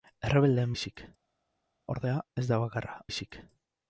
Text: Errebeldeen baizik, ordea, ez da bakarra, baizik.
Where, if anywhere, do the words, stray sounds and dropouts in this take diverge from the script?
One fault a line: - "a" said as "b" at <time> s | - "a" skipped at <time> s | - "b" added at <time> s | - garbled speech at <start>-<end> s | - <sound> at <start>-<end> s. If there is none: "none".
none